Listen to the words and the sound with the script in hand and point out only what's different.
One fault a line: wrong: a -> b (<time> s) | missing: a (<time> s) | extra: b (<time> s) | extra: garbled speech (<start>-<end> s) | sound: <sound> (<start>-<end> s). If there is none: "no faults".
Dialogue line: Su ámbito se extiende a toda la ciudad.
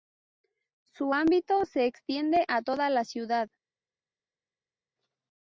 no faults